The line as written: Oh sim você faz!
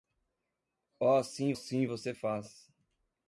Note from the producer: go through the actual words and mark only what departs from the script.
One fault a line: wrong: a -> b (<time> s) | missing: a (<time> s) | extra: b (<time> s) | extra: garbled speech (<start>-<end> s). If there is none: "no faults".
extra: sim (1.5 s)